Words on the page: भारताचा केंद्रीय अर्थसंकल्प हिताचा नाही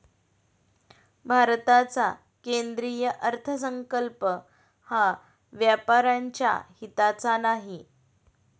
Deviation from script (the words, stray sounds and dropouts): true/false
true